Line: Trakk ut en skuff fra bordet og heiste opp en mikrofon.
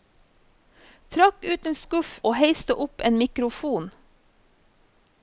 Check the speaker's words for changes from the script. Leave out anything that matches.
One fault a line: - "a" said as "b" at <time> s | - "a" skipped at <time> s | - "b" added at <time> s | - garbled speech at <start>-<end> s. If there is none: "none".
- "fra bordet" skipped at 2.1 s